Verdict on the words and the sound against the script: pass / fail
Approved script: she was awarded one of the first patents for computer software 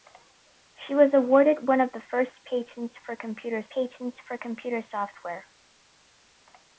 fail